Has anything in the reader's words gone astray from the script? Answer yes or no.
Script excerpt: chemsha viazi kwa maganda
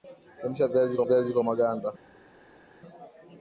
yes